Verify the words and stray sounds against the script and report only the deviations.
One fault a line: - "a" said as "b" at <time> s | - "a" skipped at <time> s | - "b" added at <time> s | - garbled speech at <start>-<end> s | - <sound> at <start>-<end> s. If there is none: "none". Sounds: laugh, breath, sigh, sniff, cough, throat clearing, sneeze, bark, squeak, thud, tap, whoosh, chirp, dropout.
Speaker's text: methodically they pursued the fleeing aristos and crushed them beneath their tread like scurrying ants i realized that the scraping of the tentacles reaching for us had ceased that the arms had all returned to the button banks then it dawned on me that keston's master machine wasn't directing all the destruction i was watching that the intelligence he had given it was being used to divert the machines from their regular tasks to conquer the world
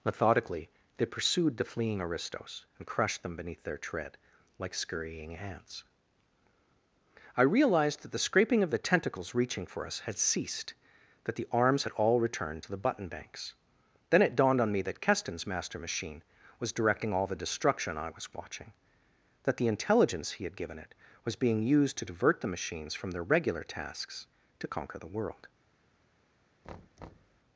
- "wasn't" said as "was" at 16.6 s
- thud at 26.6-27.4 s